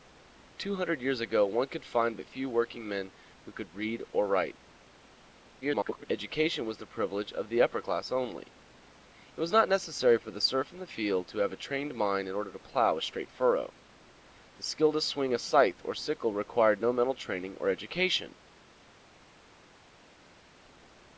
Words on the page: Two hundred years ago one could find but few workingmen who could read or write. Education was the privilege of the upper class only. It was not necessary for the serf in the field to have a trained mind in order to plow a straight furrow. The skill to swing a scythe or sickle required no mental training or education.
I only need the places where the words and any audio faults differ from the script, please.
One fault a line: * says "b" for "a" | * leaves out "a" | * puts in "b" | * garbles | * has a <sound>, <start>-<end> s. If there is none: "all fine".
* garbles